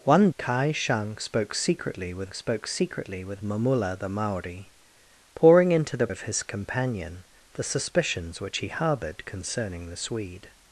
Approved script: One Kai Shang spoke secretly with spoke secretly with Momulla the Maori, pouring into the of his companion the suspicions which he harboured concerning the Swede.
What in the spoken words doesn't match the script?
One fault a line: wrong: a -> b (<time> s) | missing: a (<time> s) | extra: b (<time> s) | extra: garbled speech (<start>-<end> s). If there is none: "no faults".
no faults